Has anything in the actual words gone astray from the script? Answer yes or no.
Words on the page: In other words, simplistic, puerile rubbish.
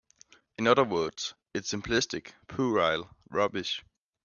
yes